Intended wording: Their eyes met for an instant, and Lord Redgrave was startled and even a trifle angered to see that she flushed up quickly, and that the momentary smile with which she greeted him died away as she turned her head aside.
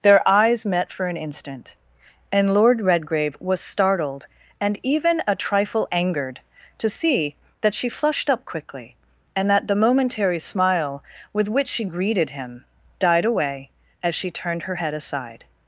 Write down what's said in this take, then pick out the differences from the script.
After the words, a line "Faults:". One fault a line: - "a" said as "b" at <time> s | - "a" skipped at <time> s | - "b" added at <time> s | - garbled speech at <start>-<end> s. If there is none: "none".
Their eyes met for an instant, and Lord Redgrave was startled and even a trifle angered to see that she flushed up quickly, and that the momentary smile with which she greeted him died away as she turned her head aside.
Faults:
none